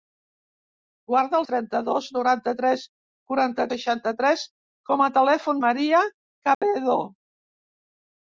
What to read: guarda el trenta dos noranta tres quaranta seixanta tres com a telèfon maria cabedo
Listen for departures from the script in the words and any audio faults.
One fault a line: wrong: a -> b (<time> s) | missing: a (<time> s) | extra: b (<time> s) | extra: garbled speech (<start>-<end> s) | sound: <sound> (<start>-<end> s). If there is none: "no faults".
sound: dropout (6.5-6.6 s)